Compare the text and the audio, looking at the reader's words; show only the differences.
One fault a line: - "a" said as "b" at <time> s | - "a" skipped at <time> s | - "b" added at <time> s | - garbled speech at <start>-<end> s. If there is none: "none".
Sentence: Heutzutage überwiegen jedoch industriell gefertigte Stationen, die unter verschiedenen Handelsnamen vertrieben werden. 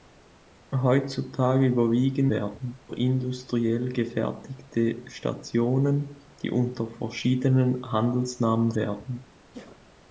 - "jedoch" said as "werden" at 2.3 s
- "vertrieben" skipped at 8.7 s